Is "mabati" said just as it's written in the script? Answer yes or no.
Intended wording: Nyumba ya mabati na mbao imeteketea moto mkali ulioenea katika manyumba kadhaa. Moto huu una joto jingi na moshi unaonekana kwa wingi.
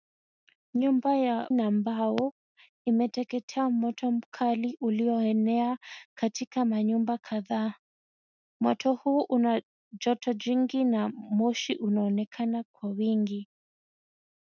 no